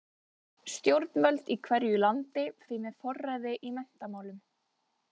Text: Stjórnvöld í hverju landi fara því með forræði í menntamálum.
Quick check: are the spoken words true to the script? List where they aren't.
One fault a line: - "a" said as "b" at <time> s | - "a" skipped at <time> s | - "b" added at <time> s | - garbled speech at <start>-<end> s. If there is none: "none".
- "fara" skipped at 2.5 s